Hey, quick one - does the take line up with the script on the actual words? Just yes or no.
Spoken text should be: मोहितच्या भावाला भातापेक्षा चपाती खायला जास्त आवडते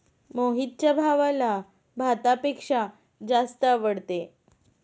no